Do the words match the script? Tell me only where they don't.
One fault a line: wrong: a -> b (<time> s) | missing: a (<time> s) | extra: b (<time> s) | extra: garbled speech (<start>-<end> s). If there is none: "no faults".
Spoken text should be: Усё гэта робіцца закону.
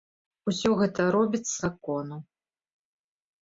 no faults